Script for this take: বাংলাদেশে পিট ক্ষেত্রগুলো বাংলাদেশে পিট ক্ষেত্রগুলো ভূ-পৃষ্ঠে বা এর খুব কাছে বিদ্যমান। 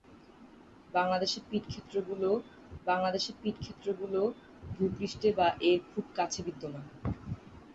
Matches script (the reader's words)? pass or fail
pass